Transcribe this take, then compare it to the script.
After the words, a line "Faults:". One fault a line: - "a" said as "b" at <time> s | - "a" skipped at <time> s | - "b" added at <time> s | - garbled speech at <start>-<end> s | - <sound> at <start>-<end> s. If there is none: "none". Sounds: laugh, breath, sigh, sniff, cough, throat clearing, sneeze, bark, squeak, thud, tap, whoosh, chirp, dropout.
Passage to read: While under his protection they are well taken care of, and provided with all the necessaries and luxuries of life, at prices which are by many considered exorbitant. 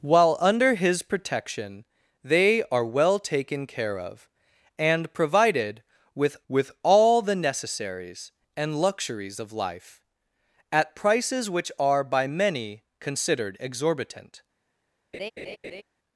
While under his protection they are well taken care of, and provided with with all the necessaries and luxuries of life, at prices which are by many considered exorbitant.
Faults:
- "with" added at 6.5 s
- laugh at 15.1-15.8 s